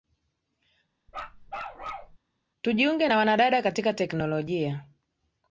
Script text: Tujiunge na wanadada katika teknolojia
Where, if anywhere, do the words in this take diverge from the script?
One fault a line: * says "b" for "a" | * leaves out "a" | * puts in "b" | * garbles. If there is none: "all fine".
all fine